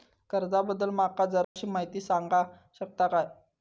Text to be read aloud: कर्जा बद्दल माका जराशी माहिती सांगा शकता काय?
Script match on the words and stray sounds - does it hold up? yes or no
no